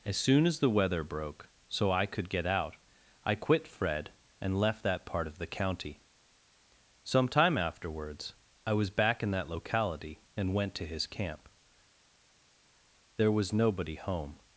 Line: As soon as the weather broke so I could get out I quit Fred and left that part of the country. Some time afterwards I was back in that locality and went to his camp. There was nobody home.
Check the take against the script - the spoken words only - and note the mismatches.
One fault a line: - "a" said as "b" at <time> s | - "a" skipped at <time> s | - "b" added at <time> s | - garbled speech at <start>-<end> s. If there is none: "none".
- "country" said as "county" at 5.5 s